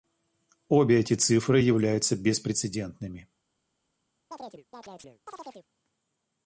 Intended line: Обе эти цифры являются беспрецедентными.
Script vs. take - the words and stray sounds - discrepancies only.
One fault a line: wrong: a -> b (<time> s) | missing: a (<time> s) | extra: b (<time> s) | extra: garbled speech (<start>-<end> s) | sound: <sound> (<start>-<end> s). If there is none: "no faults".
sound: chirp (4.3-5.7 s)